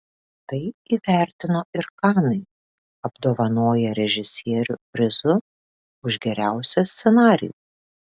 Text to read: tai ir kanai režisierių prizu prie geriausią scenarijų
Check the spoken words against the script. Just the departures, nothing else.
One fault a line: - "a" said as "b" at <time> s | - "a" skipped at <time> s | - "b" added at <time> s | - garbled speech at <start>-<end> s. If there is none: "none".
- "įvertino" added at 0.9 s
- "apdovanoję" added at 3.1 s
- "prie" said as "už" at 6.1 s